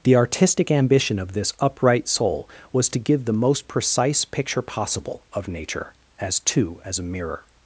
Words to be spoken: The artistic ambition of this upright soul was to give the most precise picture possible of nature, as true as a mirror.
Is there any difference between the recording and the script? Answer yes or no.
yes